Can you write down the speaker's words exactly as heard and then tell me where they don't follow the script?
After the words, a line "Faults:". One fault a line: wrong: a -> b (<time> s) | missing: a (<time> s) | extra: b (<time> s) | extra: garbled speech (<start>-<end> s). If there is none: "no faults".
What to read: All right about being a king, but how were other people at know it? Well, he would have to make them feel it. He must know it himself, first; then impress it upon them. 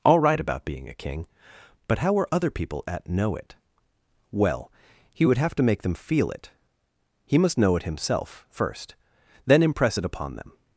All right about being a king, but how were other people at know it? Well, he would have to make them feel it. He must know it himself, first; then impress it upon them.
Faults:
no faults